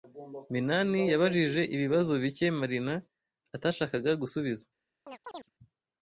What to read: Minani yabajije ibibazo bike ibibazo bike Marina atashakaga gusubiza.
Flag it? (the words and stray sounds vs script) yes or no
yes